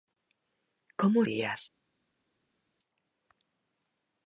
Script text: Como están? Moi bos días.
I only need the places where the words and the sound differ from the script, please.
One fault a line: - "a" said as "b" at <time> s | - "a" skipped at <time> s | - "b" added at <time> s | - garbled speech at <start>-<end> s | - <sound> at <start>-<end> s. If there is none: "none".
- "están Moi bos" skipped at 1.2 s